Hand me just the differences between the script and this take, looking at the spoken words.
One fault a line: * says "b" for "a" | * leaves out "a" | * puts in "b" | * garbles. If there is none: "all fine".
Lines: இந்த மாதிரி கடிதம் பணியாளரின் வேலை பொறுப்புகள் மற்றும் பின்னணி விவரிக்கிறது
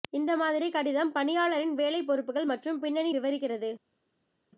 all fine